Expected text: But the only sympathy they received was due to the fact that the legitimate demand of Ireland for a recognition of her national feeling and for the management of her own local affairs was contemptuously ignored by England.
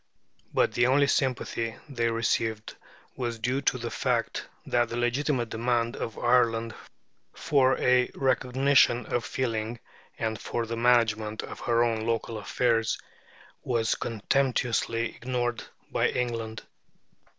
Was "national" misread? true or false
true